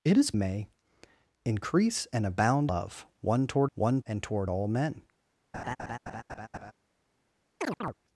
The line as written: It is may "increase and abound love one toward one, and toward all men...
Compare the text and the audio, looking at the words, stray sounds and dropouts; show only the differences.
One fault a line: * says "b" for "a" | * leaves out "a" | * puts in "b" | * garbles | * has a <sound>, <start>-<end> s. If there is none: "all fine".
* has a laugh, 5.5-6.7 s
* has a chirp, 7.6-7.9 s